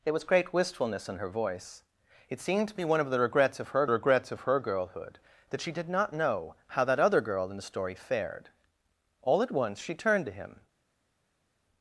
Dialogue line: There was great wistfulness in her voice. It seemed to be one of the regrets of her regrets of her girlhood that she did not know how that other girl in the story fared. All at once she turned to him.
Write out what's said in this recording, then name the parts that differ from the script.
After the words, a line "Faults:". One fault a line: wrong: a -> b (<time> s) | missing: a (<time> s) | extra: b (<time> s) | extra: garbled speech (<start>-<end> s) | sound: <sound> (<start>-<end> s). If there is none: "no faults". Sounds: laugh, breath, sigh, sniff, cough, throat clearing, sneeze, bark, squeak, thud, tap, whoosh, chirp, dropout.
There was great wistfulness in her voice. It seemed to be one of the regrets of her regrets of her girlhood that she did not know how that other girl in the story fared. All at once she turned to him.
Faults:
no faults